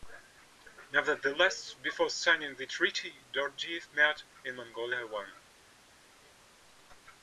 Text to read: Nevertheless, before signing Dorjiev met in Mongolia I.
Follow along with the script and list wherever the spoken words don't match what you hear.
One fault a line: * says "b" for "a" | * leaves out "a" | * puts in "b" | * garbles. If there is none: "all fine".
* puts in "the treaty"